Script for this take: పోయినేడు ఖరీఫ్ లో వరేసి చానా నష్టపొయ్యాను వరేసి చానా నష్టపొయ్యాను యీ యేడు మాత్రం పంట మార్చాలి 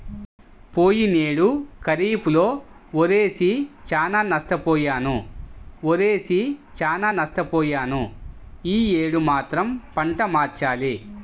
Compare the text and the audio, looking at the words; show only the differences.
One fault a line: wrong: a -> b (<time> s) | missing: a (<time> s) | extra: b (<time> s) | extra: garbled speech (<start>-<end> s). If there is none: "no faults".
no faults